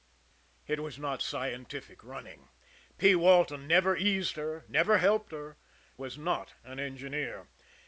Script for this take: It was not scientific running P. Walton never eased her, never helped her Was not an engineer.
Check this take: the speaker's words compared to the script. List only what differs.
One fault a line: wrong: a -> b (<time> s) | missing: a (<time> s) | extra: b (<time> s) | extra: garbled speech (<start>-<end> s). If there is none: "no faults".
no faults